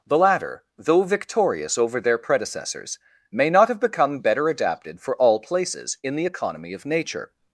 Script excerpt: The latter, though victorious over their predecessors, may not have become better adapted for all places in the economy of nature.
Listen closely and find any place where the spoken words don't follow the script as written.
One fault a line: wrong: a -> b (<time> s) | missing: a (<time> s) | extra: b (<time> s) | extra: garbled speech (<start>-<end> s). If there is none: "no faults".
no faults